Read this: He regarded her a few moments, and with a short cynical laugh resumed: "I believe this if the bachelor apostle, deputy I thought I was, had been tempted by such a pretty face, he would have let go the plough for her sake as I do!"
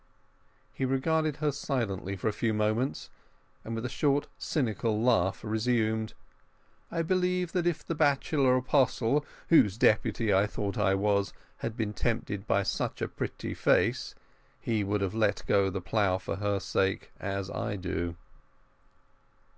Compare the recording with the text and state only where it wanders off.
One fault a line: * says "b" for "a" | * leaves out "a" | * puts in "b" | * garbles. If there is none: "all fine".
* puts in "silently for"
* says "that" for "this"
* puts in "whose"